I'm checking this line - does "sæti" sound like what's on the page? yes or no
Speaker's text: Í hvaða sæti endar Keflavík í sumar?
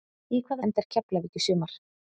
no